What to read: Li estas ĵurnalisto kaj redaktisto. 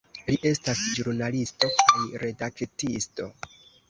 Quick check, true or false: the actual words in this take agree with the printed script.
true